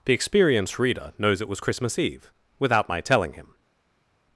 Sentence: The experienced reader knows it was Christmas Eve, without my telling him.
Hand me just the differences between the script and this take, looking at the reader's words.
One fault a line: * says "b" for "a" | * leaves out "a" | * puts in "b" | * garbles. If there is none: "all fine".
all fine